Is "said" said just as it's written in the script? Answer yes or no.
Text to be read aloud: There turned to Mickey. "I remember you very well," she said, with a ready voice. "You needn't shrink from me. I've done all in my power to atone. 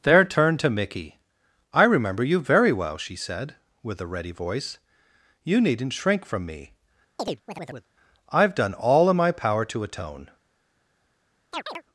yes